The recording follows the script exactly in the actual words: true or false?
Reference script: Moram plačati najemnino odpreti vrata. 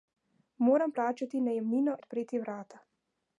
true